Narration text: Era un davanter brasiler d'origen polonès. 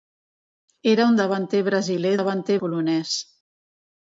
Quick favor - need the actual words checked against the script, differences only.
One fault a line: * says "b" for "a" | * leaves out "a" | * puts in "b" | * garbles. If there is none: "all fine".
* says "davanter" for "d'origen"